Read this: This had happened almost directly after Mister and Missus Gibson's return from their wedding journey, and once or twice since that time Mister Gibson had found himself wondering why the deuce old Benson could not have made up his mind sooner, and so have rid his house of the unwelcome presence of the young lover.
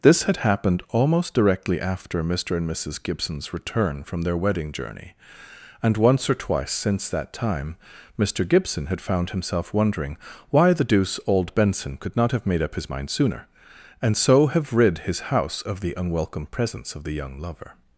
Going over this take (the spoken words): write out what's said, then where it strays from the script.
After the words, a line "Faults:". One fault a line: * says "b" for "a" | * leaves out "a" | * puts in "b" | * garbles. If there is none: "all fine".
This had happened almost directly after Mister and Missus Gibson's return from their wedding journey, and once or twice since that time Mister Gibson had found himself wondering why the deuce old Benson could not have made up his mind sooner, and so have rid his house of the unwelcome presence of the young lover.
Faults:
all fine